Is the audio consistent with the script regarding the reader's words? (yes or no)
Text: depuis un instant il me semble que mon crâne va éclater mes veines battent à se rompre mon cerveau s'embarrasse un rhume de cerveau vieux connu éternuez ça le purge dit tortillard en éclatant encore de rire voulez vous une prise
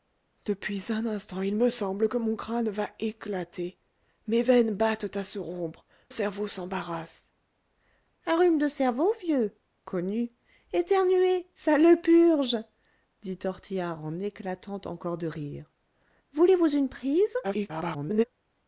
no